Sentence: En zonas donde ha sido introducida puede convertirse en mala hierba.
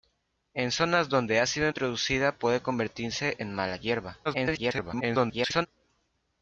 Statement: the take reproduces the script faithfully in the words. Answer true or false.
false